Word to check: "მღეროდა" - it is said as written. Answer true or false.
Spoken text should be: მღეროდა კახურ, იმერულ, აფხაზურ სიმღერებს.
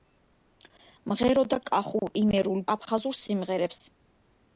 true